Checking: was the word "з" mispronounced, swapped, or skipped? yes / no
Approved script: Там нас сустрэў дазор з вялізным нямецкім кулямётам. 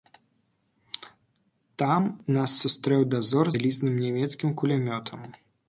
yes